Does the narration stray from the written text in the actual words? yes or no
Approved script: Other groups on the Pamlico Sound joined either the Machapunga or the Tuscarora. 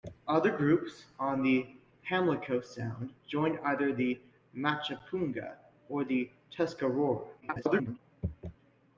yes